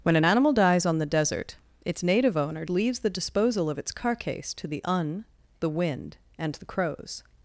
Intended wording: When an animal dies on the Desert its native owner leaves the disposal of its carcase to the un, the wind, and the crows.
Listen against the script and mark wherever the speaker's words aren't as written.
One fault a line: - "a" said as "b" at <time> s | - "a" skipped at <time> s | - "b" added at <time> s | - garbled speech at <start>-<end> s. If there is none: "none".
none